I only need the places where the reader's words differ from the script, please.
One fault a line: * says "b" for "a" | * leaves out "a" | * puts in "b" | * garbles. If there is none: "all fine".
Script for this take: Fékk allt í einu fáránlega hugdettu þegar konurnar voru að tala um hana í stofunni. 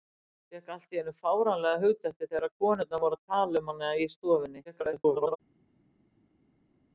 * garbles